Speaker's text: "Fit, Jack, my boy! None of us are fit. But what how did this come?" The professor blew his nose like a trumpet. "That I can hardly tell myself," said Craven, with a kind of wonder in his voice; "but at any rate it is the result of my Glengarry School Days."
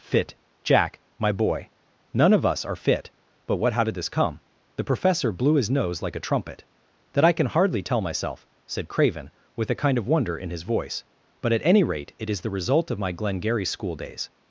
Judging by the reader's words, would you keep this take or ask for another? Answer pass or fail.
pass